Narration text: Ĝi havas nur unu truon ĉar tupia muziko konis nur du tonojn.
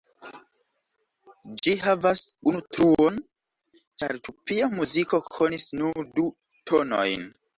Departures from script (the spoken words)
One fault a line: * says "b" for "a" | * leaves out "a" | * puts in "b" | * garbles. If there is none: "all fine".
* leaves out "nur"